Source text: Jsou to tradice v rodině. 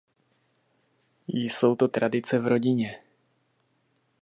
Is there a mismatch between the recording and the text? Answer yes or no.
no